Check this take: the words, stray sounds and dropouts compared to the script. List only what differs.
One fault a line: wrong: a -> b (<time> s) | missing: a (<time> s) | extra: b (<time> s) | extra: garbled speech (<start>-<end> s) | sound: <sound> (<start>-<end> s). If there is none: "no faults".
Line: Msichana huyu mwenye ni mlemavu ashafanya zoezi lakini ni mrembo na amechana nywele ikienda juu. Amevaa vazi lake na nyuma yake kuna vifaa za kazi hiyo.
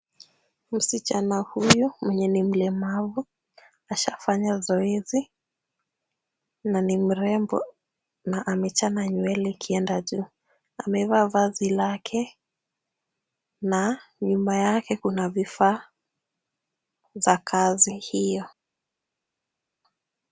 wrong: lakini -> na (6.6 s)